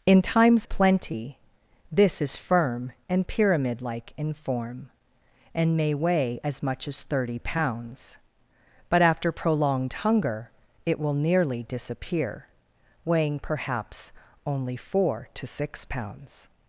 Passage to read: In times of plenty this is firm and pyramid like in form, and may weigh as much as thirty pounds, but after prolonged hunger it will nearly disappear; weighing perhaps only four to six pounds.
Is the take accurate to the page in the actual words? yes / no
no